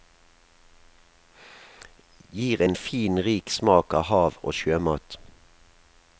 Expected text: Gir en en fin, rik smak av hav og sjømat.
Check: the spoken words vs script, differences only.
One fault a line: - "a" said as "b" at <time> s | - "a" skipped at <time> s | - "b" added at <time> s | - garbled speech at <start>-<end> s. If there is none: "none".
- "en" skipped at 2.7 s